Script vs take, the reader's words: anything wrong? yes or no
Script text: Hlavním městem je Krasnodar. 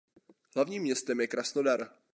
no